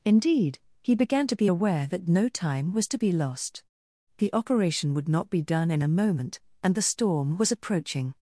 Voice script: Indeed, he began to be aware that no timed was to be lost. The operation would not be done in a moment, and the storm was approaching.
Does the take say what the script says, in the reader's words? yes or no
no